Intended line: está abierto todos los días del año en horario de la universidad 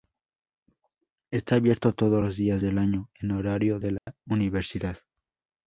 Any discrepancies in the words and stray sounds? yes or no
yes